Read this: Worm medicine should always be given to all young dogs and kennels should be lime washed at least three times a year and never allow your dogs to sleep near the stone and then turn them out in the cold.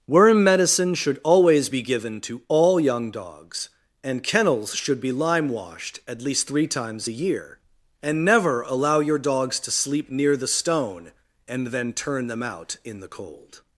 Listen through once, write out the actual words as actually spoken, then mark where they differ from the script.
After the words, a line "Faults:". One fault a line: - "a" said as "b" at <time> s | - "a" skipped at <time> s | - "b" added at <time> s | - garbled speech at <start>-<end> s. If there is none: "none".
Worm medicine should always be given to all young dogs and kennels should be lime washed at least three times a year and never allow your dogs to sleep near the stone and then turn them out in the cold.
Faults:
none